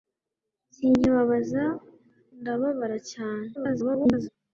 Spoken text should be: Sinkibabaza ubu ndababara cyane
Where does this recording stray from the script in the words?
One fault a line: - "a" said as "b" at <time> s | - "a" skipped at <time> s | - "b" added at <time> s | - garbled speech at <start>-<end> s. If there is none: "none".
- "ubu" skipped at 1.6 s
- garbled speech at 3.5-4.3 s